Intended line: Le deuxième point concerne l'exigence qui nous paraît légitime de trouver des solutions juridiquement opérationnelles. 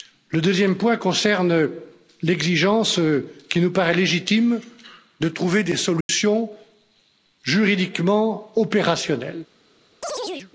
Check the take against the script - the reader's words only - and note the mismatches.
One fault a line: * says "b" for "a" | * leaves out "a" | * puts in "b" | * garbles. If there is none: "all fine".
all fine